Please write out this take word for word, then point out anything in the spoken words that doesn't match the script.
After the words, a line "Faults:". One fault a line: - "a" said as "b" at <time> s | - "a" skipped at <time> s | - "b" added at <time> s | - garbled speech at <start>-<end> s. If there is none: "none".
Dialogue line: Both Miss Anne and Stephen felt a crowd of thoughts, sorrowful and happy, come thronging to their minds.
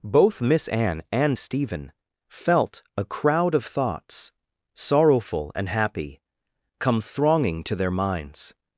Both Miss Anne and Stephen felt a crowd of thoughts, sorrowful and happy, come thronging to their minds.
Faults:
none